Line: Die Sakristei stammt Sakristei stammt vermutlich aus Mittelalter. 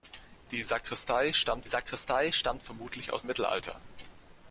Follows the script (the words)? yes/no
yes